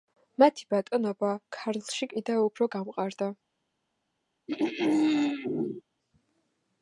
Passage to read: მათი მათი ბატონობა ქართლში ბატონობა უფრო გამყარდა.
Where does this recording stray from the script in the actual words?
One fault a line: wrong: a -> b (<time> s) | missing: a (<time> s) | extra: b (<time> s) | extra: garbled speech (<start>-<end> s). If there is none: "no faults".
missing: მათი (0.6 s)
wrong: ბატონობა -> კიდევ (2.1 s)